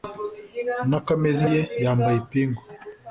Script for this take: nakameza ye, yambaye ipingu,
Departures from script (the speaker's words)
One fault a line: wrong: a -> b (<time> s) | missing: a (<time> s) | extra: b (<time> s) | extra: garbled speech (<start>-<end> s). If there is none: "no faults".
no faults